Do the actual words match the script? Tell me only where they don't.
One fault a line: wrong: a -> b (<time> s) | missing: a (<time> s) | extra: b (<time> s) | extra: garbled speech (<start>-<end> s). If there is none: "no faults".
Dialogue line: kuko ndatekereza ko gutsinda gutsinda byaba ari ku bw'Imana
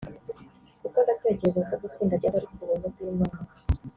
missing: gutsinda (2.1 s)
extra: buntu (2.7 s)